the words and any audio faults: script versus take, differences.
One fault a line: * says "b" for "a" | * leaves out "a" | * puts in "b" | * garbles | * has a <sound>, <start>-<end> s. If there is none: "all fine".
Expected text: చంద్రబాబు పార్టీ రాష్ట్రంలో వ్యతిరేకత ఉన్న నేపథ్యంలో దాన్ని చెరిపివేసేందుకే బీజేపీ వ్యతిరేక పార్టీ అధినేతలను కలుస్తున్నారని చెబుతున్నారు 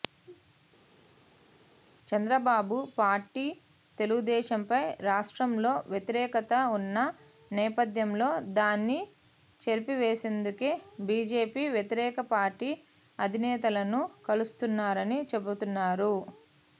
* puts in "తెలుగుదేశంపై"